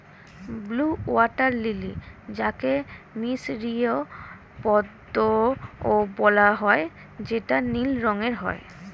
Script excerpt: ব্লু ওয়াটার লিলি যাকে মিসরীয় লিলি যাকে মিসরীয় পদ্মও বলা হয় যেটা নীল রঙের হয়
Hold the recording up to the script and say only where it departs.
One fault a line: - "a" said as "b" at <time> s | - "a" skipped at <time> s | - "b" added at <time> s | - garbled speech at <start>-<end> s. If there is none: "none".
- "লিলি যাকে মিসরীয়" skipped at 3.9 s